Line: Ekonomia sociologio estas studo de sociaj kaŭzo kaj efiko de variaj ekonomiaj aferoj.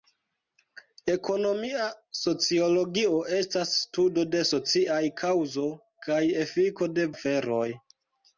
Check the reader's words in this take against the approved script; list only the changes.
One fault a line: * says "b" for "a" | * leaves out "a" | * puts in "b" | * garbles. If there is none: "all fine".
* leaves out "variaj ekonomiaj"